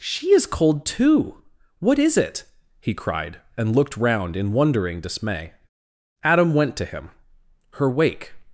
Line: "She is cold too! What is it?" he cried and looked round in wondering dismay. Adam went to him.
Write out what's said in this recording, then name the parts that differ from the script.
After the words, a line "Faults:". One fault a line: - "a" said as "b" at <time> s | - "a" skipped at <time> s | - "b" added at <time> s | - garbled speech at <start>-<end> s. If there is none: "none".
"She is cold too! What is it?" he cried and looked round in wondering dismay. Adam went to him. "Her wake
Faults:
- "Her wake" added at 7.7 s